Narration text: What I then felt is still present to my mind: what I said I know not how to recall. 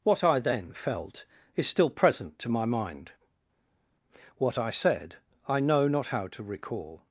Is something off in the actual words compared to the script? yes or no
no